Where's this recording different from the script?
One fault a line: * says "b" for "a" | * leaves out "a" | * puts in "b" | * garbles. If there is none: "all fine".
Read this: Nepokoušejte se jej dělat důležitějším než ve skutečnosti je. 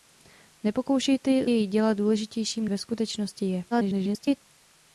* leaves out "se"
* leaves out "než"
* garbles